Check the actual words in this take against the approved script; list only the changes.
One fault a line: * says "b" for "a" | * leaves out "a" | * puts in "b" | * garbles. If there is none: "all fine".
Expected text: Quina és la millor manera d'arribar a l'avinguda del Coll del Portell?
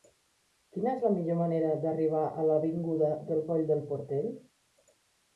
all fine